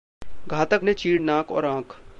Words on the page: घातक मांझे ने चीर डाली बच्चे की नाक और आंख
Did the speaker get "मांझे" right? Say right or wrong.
wrong